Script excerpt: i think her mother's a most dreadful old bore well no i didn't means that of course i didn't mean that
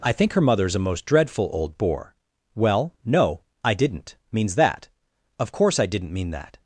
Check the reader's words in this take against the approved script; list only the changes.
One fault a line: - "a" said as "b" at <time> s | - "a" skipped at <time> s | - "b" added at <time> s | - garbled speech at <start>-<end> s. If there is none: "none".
none